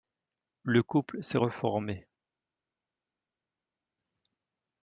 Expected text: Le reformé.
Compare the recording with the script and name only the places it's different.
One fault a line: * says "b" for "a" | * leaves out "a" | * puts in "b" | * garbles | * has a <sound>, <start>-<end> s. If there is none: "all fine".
* puts in "couple s'est"